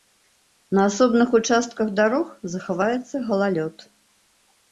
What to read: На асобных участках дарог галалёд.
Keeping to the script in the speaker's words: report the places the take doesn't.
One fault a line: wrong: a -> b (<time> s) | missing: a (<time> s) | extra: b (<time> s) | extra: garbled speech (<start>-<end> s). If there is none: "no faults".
extra: захаваецца (2.5 s)